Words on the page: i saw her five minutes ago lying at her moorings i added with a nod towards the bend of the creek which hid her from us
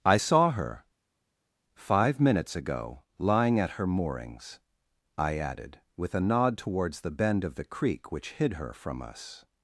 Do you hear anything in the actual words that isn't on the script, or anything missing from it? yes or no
no